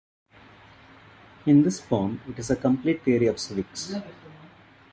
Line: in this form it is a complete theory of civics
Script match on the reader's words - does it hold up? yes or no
yes